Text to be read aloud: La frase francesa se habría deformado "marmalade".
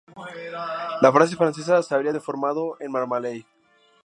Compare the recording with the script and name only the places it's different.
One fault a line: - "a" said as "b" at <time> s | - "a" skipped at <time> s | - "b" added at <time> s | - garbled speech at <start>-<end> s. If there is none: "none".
- "en" added at 2.8 s